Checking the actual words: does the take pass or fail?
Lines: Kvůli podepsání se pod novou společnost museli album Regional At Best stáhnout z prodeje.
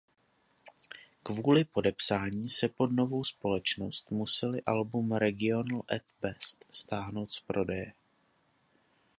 pass